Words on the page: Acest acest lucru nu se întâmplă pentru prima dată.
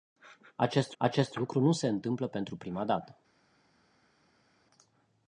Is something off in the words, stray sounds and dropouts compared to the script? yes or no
no